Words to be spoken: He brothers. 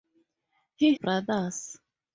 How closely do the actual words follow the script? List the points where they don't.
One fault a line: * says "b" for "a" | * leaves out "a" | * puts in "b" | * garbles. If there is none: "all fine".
all fine